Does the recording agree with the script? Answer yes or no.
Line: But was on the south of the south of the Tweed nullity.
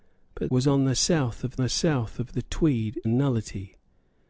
yes